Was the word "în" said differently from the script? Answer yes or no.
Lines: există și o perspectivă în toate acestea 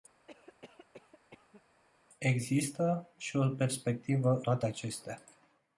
yes